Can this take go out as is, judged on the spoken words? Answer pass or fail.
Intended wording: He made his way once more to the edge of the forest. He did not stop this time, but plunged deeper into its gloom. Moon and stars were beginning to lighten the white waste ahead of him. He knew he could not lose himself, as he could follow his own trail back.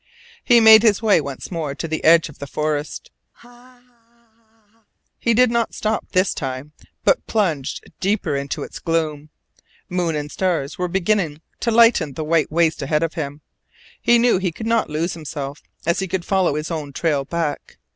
pass